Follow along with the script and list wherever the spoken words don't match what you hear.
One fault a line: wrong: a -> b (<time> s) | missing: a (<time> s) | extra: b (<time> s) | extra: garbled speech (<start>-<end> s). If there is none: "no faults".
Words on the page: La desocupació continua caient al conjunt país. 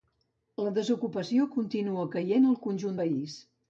no faults